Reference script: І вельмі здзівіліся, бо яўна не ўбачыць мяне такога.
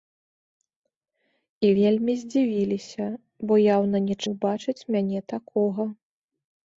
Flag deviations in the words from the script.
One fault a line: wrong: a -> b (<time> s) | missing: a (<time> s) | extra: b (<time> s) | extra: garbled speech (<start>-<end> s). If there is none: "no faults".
no faults